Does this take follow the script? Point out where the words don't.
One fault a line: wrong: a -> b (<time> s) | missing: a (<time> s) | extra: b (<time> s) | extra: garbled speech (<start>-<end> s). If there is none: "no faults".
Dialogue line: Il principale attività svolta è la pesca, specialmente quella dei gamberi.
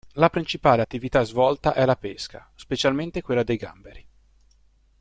wrong: Il -> La (0.1 s)